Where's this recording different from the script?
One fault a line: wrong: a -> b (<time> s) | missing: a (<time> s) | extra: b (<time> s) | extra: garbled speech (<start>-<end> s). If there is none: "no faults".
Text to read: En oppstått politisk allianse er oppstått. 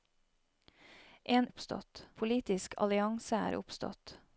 no faults